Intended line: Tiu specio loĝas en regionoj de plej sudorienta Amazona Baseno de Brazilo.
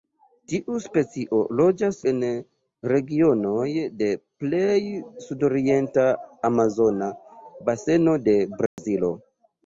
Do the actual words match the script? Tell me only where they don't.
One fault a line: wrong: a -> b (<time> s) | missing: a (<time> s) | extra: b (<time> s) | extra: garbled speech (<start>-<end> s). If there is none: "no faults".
no faults